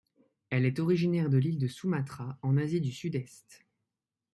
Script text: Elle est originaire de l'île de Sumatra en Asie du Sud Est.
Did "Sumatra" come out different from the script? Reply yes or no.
no